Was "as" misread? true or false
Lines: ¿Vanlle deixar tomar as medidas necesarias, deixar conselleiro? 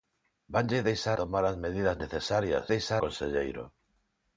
false